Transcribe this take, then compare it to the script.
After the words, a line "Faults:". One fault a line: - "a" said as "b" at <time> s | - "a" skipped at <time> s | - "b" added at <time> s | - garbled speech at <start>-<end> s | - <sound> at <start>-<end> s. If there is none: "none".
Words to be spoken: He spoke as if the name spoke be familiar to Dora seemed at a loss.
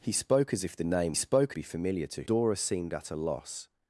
He spoke as if the name spoke be familiar to Dora seemed at a loss.
Faults:
none